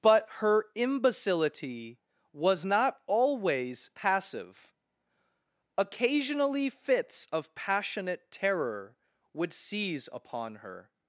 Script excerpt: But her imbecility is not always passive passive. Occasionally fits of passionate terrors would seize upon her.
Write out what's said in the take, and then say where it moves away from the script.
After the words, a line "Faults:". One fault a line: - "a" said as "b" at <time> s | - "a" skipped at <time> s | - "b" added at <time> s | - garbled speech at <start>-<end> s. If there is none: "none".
But her imbecility was not always passive. Occasionally fits of passionate terror would seize upon her.
Faults:
- "is" said as "was" at 2.3 s
- "passive" skipped at 4.7 s
- "terrors" said as "terror" at 8.3 s